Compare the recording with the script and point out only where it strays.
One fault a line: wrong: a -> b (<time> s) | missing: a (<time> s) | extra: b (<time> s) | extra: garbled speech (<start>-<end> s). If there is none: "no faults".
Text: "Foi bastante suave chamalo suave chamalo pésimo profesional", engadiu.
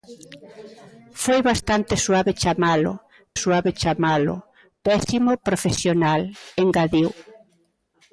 no faults